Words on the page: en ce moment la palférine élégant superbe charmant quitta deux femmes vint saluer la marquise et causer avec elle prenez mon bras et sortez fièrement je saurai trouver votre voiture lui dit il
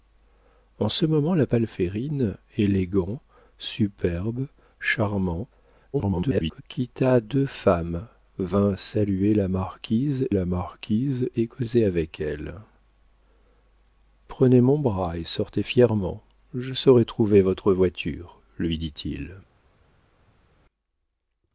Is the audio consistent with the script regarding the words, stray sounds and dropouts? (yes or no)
no